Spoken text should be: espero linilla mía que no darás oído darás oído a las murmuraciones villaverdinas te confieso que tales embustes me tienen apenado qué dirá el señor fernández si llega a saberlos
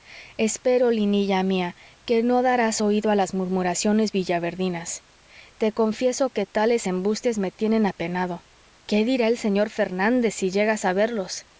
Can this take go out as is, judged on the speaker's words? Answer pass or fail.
fail